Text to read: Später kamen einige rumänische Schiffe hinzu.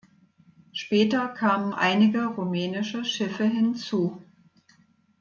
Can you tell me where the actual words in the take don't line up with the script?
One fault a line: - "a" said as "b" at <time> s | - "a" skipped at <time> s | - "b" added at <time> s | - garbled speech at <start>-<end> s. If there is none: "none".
none